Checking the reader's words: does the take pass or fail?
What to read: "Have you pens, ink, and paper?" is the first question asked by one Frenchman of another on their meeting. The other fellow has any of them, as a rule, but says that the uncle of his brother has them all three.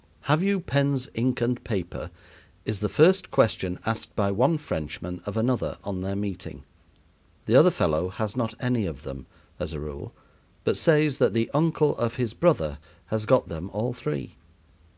fail